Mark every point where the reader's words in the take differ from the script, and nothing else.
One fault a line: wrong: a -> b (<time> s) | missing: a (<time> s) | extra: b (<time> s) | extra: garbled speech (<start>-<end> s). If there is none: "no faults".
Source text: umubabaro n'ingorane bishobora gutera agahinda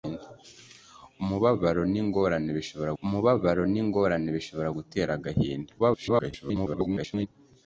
extra: umubabaro n'ingorane bishobora (3.0 s)
extra: garbled speech (5.8-7.3 s)